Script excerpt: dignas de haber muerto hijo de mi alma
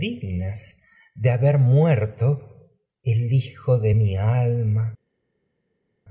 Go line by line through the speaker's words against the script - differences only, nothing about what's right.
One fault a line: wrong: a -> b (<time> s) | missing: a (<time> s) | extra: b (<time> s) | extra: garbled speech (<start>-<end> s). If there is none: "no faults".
extra: el (3.0 s)